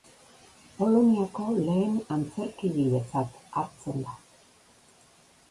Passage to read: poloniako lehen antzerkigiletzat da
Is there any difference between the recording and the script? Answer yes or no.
yes